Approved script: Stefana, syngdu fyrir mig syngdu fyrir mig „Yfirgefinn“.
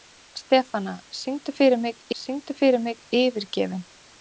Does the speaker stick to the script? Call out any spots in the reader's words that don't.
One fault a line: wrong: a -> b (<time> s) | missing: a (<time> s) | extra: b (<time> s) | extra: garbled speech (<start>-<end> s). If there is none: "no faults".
no faults